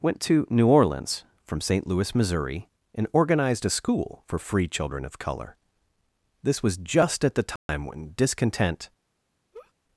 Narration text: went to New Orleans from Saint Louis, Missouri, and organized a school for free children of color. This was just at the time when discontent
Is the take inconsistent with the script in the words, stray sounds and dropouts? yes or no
yes